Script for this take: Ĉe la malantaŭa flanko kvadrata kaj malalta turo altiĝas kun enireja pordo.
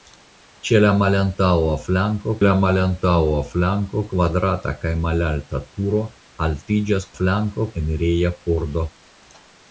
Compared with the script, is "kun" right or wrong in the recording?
wrong